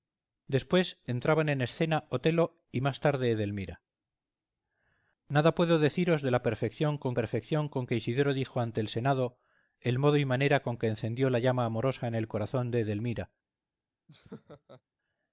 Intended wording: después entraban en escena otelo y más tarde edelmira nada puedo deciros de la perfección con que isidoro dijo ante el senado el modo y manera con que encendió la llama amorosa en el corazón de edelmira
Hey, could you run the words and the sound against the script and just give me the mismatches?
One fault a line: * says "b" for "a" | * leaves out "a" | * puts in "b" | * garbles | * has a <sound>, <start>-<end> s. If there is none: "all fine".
* puts in "perfección con"
* has a laugh, 14.1-14.8 s